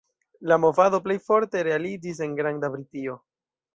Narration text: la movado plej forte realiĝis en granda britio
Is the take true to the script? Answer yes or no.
yes